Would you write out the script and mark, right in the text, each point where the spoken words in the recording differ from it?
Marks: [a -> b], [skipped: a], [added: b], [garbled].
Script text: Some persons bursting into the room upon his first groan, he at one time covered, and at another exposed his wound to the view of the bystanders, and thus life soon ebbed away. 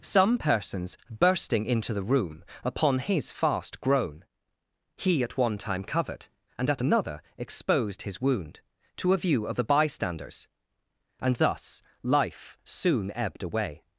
Some persons bursting into the room upon his [first -> fast] groan, he at one time covered, and at another exposed his wound to [the -> a] view of the bystanders, and thus life soon ebbed away.